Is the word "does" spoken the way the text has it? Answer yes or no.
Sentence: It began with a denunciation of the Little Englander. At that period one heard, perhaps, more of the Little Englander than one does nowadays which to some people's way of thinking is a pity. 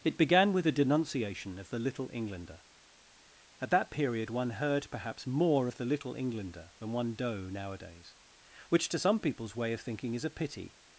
no